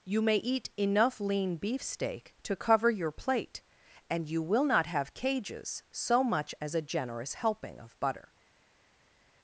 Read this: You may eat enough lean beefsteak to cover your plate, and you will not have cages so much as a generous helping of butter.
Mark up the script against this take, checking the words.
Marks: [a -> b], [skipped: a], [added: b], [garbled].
You may eat enough lean beefsteak to cover your plate, and you will not have cages so much as a generous helping of butter.